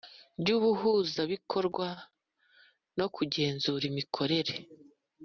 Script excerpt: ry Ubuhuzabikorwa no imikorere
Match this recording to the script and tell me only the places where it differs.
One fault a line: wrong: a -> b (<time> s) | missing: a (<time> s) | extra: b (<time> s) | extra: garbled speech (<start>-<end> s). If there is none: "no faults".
extra: kugenzura (3.1 s)